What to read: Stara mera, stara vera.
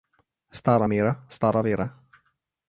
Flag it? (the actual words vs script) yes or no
no